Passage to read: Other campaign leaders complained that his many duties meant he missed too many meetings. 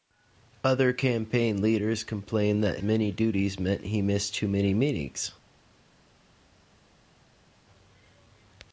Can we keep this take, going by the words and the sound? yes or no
no